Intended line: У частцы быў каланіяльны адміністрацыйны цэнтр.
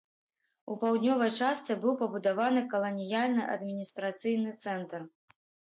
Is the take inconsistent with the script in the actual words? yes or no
yes